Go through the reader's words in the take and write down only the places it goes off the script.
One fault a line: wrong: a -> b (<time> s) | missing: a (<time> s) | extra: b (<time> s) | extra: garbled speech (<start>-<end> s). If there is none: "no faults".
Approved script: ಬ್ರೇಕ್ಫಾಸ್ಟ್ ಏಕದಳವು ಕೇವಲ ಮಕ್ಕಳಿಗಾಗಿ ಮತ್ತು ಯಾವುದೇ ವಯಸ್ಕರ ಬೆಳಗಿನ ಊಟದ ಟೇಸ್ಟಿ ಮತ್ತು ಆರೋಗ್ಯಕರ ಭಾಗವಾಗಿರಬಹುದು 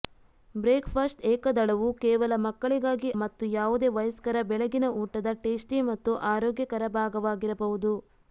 no faults